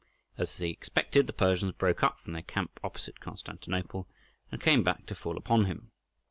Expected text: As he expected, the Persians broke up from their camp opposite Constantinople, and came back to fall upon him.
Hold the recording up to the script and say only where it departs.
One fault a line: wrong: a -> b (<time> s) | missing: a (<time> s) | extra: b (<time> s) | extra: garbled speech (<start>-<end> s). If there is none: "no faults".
no faults